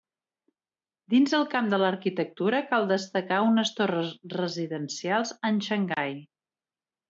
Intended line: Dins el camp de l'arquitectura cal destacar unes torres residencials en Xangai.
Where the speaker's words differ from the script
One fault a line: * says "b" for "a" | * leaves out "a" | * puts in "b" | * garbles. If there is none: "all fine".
all fine